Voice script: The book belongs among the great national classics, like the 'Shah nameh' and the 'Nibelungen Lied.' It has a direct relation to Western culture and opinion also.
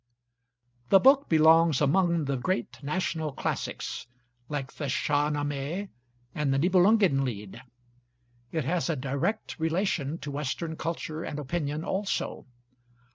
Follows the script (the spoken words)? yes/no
yes